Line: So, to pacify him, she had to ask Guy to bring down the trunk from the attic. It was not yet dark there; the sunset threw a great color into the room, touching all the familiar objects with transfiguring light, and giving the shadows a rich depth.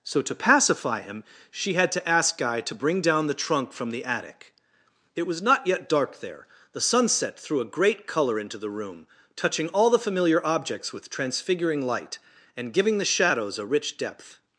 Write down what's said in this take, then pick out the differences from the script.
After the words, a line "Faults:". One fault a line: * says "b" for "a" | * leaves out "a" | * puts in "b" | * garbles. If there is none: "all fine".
So, to pacify him, she had to ask Guy to bring down the trunk from the attic. It was not yet dark there; the sunset threw a great color into the room, touching all the familiar objects with transfiguring light, and giving the shadows a rich depth.
Faults:
all fine